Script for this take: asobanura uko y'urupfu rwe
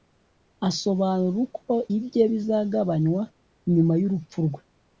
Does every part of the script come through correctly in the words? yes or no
no